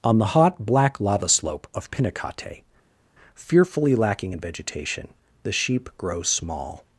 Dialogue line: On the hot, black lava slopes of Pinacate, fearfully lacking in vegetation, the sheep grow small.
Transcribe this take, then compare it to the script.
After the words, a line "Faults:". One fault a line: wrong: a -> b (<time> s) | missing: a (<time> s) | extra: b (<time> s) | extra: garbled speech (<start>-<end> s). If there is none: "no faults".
On the hot, black lava slope of Pinacate, fearfully lacking in vegetation, the sheep grow small.
Faults:
wrong: slopes -> slope (1.3 s)